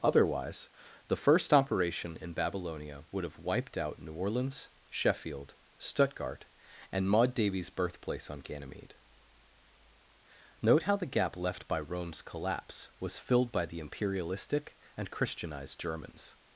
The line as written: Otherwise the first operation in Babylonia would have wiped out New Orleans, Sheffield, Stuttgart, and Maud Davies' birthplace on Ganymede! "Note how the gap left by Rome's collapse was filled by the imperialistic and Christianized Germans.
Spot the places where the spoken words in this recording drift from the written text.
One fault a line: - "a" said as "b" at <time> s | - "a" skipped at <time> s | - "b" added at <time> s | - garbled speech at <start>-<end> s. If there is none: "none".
none